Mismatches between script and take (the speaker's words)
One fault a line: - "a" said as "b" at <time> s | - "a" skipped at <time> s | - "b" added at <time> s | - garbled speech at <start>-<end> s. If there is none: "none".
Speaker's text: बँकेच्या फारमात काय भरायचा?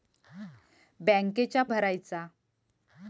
- "फारमात काय" skipped at 1.6 s